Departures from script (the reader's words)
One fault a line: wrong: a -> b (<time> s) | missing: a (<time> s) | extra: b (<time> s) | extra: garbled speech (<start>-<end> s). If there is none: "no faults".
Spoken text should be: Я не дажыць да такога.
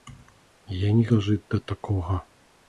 no faults